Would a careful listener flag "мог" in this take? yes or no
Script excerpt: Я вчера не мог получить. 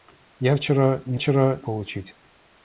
yes